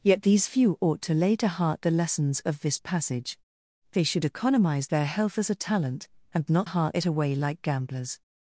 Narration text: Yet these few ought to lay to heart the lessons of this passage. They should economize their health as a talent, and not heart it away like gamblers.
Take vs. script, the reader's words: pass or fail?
pass